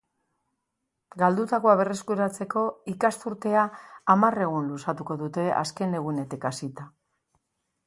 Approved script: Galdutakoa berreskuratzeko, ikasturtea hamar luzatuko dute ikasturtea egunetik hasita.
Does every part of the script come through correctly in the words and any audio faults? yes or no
no